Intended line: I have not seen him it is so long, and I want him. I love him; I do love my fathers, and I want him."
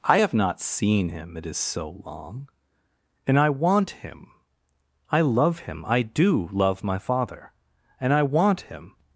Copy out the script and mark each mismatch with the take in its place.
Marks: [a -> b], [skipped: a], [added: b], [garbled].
I have not seen him it is so long, and I want him. I love him; I do love my [fathers, -> father] and I want him."